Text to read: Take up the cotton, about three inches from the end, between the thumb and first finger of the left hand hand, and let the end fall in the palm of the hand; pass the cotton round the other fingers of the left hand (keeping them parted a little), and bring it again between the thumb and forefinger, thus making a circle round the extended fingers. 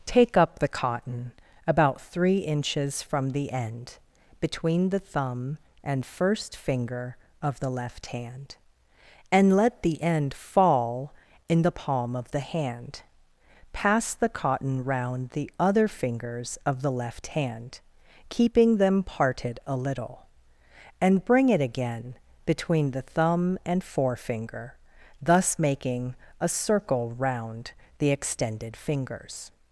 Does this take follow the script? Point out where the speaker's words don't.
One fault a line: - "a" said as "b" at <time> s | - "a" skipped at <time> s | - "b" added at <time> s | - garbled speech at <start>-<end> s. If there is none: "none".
- "hand" skipped at 8.6 s